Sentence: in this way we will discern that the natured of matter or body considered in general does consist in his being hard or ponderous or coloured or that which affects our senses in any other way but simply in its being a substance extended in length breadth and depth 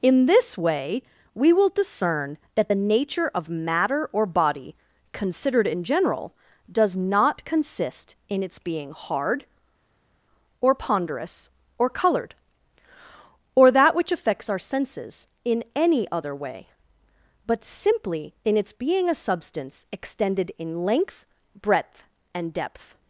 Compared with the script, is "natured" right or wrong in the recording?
wrong